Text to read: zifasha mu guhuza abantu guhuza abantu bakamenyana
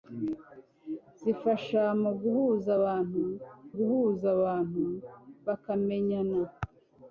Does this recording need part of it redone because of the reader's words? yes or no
no